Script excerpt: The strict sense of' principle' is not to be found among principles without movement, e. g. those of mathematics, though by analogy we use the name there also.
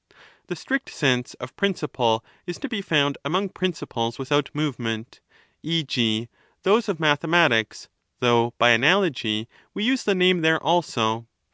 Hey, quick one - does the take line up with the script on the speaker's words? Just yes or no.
no